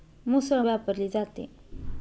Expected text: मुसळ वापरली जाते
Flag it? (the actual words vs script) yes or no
no